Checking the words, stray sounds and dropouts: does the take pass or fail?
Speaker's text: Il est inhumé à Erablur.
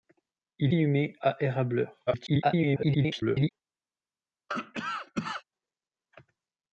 fail